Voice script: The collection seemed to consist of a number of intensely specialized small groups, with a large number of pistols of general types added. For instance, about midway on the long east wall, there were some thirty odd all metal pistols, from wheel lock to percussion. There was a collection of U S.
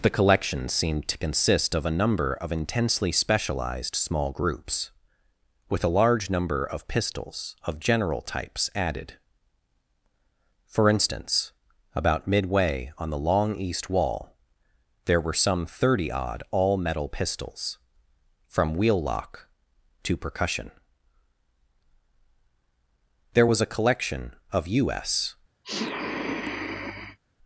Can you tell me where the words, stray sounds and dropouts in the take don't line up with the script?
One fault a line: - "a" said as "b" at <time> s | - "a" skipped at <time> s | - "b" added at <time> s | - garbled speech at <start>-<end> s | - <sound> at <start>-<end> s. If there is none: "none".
- sniff at 25.6-27.2 s